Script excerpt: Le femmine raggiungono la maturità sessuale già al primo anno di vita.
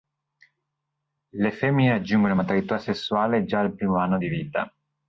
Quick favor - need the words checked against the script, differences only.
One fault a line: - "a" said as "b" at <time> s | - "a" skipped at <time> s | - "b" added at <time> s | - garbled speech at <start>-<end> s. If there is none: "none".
none